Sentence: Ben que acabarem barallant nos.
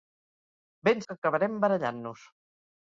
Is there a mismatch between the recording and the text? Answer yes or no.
no